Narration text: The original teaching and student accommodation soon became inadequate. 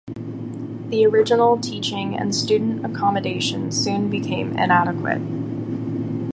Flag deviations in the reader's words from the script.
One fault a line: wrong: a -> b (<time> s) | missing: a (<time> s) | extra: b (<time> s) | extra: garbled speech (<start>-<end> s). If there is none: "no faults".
no faults